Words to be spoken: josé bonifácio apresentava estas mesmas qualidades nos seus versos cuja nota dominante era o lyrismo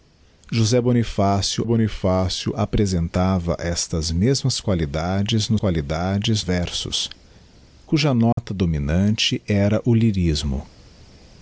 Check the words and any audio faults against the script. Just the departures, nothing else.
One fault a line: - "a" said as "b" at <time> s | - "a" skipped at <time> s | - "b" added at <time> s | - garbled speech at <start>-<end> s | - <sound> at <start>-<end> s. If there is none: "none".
- "bonifácio" added at 1.6 s
- "seus" said as "qualidades" at 5.5 s
- dropout at 8.3-8.4 s